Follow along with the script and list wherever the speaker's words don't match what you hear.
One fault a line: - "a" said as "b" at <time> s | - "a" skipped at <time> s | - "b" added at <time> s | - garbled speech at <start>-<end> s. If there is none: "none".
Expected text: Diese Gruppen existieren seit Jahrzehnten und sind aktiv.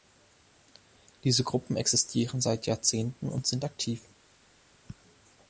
none